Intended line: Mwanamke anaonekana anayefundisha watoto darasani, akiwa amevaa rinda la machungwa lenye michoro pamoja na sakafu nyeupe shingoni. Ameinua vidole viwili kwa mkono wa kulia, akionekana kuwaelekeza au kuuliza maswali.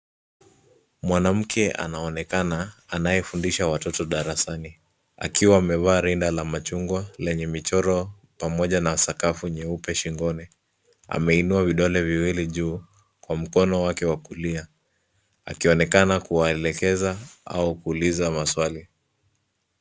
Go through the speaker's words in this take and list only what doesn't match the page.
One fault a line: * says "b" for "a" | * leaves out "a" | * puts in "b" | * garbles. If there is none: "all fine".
* puts in "juu"
* puts in "wake"